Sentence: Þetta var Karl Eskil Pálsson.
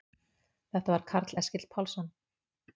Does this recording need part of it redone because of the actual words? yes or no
no